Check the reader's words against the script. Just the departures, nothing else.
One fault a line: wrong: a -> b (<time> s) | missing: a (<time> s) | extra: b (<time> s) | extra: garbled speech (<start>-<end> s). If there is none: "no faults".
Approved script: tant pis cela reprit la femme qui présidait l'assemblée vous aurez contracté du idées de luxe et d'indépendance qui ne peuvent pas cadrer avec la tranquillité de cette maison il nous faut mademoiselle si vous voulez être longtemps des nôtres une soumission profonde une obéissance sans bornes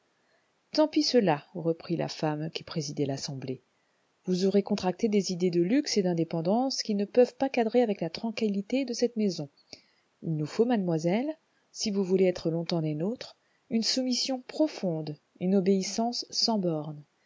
wrong: du -> des (5.1 s)